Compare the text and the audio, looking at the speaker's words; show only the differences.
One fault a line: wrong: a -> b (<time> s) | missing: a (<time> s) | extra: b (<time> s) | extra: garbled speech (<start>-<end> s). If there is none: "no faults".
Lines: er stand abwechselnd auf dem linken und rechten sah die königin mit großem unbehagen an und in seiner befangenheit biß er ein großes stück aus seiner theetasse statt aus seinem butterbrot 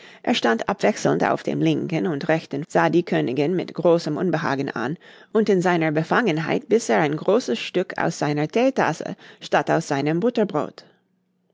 no faults